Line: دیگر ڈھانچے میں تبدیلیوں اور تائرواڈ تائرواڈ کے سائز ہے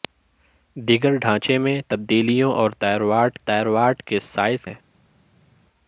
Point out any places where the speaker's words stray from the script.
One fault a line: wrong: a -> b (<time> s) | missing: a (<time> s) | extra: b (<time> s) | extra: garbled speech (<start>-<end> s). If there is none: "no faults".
no faults